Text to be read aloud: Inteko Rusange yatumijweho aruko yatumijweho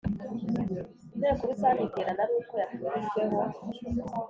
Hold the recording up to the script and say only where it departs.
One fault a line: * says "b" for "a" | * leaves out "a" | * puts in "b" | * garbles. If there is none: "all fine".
* says "iterana" for "yatumijweho"